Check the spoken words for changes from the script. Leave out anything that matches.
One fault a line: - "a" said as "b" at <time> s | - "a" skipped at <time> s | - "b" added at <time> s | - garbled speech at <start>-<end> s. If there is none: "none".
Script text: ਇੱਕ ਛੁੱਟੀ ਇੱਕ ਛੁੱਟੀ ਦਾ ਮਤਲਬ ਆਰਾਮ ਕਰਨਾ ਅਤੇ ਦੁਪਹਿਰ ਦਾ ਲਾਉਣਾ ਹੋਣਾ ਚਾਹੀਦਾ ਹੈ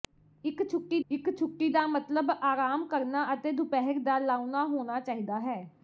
none